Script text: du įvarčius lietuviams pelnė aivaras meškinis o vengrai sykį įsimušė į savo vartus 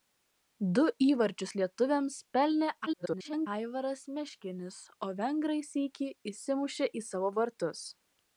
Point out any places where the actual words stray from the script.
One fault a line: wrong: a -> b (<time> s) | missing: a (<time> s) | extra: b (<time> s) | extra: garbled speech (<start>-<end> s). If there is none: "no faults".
extra: garbled speech (2.9-3.5 s)